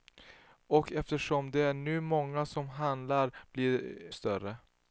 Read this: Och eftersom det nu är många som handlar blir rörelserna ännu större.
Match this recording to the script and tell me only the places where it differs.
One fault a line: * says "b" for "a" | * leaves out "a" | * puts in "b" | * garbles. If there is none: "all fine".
* leaves out "rörelserna ännu"